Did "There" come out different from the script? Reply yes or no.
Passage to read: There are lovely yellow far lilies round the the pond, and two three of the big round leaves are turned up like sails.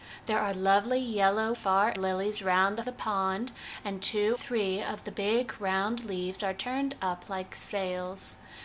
no